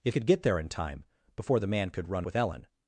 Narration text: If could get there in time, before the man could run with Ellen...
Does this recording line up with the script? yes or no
yes